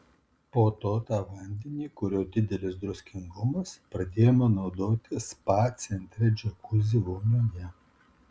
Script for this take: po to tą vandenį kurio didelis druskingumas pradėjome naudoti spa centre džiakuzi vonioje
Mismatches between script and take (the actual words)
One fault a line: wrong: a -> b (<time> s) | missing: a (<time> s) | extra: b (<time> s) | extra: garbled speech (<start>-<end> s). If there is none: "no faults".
no faults